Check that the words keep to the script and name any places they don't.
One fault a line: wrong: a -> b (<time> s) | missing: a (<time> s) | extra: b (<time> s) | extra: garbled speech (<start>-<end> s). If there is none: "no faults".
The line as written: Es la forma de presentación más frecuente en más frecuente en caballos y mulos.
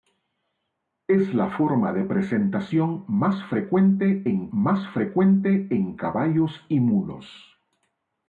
no faults